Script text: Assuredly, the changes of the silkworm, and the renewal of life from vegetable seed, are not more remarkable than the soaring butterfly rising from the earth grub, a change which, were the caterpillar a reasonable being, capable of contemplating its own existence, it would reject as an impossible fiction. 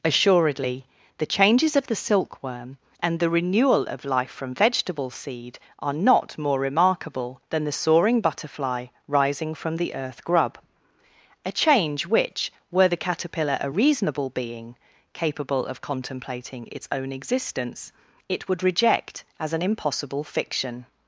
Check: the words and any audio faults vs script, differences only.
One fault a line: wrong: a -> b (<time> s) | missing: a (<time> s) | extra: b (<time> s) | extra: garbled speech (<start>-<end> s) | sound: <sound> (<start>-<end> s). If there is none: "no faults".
no faults